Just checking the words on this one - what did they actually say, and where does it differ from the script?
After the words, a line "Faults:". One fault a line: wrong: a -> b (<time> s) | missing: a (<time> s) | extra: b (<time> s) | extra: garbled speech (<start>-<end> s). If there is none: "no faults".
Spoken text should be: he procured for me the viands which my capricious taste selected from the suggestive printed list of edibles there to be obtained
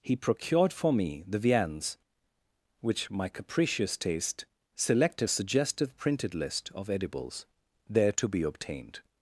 he procured for me the viands which my capricious taste selected suggestive printed list of edibles there to be obtained
Faults:
missing: from the (5.3 s)